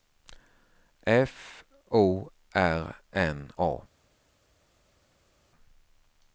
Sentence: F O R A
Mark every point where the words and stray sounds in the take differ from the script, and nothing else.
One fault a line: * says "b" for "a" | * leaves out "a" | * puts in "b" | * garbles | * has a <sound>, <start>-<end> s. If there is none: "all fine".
* puts in "N"